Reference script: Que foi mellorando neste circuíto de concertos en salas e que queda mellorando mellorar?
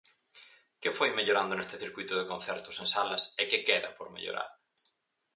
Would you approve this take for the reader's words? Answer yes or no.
no